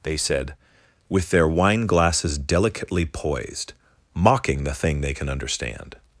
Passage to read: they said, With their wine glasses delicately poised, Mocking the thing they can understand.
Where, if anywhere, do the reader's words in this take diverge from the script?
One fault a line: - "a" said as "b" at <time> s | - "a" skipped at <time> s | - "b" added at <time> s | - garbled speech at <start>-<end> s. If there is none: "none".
none